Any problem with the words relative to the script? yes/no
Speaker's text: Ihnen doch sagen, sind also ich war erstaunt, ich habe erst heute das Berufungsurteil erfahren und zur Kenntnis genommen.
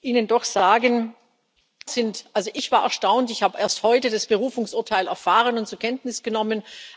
no